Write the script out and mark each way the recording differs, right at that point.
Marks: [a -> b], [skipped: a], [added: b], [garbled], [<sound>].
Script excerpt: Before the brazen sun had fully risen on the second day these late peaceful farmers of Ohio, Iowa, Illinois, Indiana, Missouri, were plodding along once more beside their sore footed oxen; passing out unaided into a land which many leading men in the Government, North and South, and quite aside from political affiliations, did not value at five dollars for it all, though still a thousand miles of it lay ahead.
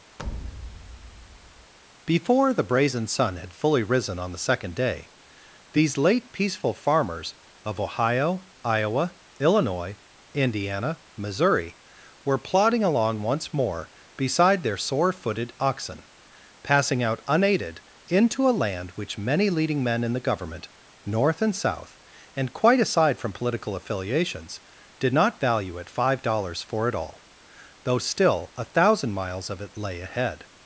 [thud] Before the brazen sun had fully risen on the second day these late peaceful farmers of Ohio, Iowa, Illinois, Indiana, Missouri, were plodding along once more beside their sore footed oxen; passing out unaided into a land which many leading men in the Government, North and South, and quite aside from political affiliations, did not value at five dollars for it all, though still a thousand miles of it lay ahead.